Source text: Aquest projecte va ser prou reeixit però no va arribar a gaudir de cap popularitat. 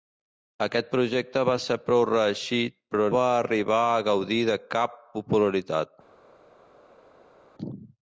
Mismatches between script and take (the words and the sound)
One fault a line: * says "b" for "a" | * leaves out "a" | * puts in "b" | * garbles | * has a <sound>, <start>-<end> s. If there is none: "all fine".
* leaves out "no"